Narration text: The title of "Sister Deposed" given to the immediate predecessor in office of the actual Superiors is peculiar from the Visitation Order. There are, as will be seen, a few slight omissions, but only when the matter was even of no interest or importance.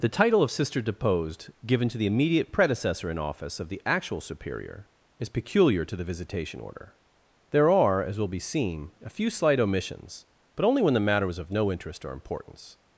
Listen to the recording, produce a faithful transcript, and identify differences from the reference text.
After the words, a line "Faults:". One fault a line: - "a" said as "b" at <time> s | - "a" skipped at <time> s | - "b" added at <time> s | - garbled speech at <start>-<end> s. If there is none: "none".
The title of "Sister Deposed" given to the immediate predecessor in office of the actual Superior is peculiar to the Visitation Order. There are, as will be seen, a few slight omissions, but only when the matter was of no interest or importance.
Faults:
- "Superiors" said as "Superior" at 4.2 s
- "from" said as "to" at 5.8 s
- "even" skipped at 11.4 s